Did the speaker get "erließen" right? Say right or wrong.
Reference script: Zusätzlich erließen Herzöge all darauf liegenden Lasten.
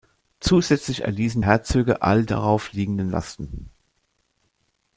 right